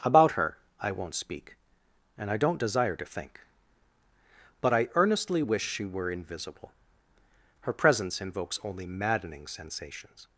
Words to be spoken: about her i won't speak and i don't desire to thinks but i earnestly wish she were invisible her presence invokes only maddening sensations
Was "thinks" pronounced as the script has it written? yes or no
no